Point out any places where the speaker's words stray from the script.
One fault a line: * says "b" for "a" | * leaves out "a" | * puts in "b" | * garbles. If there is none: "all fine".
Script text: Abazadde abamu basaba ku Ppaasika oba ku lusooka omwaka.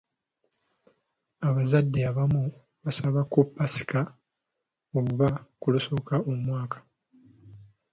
all fine